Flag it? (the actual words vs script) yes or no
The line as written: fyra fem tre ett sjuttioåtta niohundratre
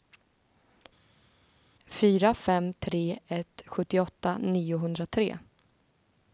no